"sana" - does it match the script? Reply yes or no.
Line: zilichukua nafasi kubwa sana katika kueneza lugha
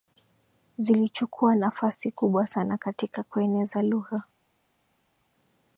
yes